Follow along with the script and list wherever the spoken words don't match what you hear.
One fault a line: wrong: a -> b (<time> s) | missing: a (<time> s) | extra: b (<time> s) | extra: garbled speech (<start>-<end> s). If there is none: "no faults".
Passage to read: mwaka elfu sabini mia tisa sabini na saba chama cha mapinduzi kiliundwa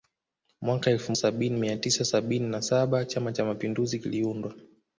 no faults